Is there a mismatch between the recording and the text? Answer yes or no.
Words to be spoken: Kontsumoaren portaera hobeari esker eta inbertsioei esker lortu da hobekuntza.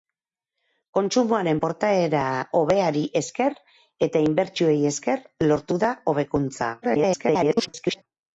yes